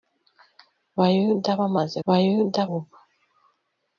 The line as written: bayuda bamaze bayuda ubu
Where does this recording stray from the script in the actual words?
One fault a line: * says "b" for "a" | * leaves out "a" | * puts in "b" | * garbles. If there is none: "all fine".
all fine